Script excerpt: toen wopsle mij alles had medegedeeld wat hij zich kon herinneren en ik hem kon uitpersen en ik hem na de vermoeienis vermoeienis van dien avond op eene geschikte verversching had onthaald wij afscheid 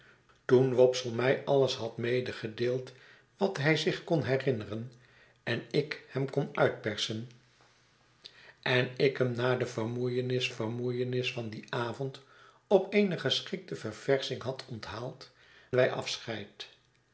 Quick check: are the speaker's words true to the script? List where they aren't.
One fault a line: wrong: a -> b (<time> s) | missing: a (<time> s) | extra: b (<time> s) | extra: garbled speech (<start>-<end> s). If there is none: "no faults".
no faults